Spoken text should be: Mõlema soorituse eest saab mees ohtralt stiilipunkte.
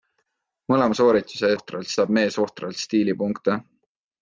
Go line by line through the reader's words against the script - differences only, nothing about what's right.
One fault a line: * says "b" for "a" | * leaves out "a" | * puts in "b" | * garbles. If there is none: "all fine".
* says "ohtralt" for "eest"